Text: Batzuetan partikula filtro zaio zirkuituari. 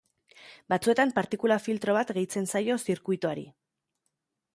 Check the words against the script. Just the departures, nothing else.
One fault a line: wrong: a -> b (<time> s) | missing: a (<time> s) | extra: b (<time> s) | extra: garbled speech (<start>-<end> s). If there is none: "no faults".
extra: bat gehitzen (2.0 s)